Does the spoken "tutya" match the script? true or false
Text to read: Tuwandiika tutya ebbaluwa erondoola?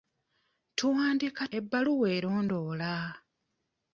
false